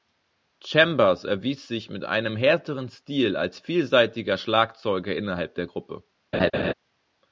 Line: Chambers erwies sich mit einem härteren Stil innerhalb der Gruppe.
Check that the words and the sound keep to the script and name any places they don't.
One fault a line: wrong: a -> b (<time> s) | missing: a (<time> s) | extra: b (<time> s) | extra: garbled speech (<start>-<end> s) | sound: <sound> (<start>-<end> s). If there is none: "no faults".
extra: als vielseitiger Schlagzeuger (3.4 s)
sound: laugh (6.3-6.7 s)